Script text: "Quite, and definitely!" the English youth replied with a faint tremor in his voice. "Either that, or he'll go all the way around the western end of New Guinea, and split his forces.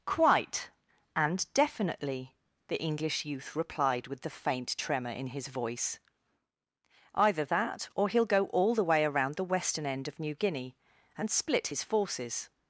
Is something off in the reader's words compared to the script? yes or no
yes